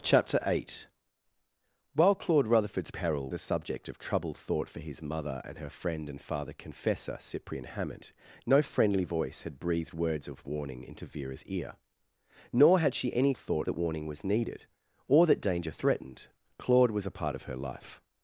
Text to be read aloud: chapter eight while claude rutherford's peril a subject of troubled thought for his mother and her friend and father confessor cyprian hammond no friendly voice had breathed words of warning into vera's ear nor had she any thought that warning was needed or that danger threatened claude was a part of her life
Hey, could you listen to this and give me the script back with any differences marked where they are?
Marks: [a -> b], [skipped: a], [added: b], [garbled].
chapter eight while claude rutherford's peril a subject of troubled thought for his mother and her friend and father confessor cyprian hammond no friendly voice had breathed words of warning into vera's ear nor had she any thought that warning was needed or that danger threatened claude was a part of her life